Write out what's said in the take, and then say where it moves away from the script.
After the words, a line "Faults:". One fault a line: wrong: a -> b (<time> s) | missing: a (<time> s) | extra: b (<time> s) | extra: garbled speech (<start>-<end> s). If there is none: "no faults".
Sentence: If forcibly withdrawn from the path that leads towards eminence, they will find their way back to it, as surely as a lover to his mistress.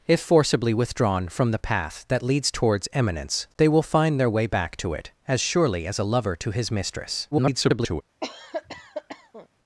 If forcibly withdrawn from the path that leads towards eminence, they will find their way back to it, as surely as a lover to his mistress. [garbled]
Faults:
extra: garbled speech (7.3-8.0 s)